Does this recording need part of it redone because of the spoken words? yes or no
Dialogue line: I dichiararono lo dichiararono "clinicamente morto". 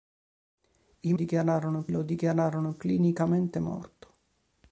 no